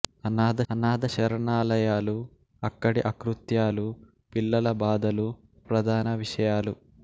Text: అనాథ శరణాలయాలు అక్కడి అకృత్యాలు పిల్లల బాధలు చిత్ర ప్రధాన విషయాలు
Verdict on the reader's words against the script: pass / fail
fail